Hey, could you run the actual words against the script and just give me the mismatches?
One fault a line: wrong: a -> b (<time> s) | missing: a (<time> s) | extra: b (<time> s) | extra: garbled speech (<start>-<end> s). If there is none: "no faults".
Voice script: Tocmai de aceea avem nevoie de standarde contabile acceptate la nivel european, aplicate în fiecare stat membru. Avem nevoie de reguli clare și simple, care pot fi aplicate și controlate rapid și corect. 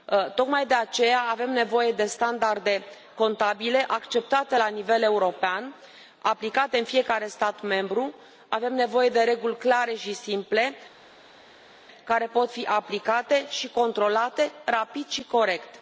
no faults